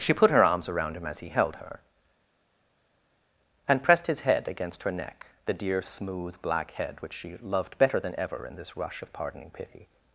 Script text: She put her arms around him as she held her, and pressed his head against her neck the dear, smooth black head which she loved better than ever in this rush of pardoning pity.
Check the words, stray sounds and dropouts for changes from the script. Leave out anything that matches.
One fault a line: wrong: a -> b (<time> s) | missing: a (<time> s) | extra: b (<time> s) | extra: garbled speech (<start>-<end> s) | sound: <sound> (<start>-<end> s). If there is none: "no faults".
wrong: she -> he (1.2 s)